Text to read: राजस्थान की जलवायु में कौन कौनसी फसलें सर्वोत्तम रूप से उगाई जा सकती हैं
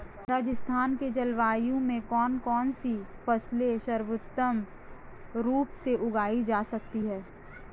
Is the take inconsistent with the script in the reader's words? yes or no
no